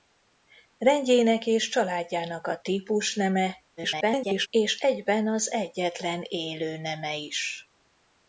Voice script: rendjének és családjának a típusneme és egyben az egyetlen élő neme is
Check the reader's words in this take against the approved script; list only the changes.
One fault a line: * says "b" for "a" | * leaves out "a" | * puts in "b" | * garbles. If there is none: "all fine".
* garbles